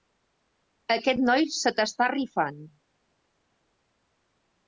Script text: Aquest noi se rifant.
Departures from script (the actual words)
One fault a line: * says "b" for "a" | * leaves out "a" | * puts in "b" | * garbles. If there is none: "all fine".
* puts in "t'està"